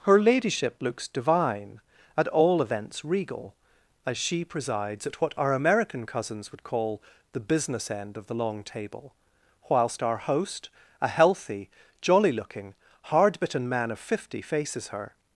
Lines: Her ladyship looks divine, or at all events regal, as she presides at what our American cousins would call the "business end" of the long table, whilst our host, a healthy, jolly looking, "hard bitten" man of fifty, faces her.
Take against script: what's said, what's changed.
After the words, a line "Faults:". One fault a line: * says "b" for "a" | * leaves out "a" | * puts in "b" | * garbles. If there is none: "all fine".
Her ladyship looks divine, at all events regal, as she presides at what our American cousins would call the "business end" of the long table, whilst our host, a healthy, jolly looking, "hard bitten" man of fifty, faces her.
Faults:
* leaves out "or"